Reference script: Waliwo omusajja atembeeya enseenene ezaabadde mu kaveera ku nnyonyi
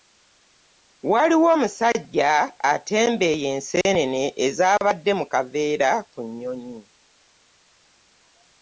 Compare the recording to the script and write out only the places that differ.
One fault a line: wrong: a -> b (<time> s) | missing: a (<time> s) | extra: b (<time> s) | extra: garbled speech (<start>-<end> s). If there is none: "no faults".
no faults